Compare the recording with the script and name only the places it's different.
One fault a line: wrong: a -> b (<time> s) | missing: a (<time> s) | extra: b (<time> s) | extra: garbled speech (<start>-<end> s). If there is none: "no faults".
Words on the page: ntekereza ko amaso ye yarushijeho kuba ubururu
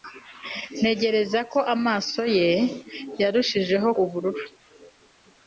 missing: kuba (3.9 s)